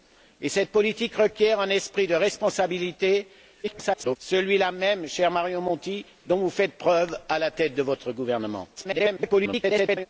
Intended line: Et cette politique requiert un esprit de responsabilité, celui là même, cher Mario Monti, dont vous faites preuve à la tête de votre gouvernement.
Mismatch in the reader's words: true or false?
true